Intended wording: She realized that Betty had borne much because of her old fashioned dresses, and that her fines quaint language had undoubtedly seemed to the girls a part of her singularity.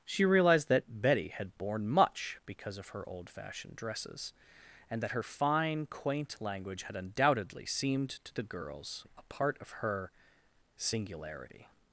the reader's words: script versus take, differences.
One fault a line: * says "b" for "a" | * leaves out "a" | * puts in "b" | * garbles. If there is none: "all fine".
* says "fine" for "fines"